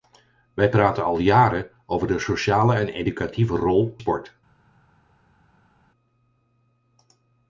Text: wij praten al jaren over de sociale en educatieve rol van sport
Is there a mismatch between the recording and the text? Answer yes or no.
yes